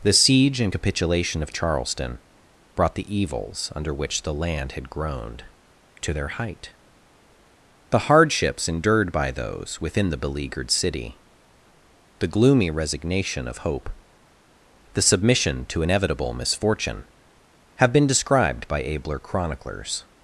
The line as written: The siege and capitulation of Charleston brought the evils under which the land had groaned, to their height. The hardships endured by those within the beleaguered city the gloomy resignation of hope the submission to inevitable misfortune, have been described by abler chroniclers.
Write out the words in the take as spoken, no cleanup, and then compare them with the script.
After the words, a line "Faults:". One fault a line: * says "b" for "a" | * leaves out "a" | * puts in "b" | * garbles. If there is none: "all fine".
The siege and capitulation of Charleston brought the evils under which the land had groaned, to their height. The hardships endured by those within the beleaguered city the gloomy resignation of hope the submission to inevitable misfortune, have been described by abler chroniclers.
Faults:
all fine